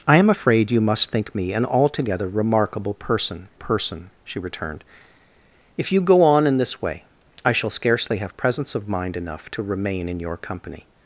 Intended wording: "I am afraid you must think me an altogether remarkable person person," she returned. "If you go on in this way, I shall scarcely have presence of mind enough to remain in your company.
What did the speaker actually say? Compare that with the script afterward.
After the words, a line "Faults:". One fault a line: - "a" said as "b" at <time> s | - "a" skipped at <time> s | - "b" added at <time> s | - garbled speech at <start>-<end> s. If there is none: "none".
"I am afraid you must think me an altogether remarkable person person," she returned. "If you go on in this way, I shall scarcely have presence of mind enough to remain in your company.
Faults:
none